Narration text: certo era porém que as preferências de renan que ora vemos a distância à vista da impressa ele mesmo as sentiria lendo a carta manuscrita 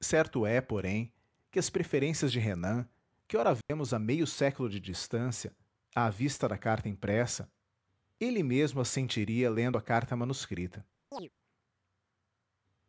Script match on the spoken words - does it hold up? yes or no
no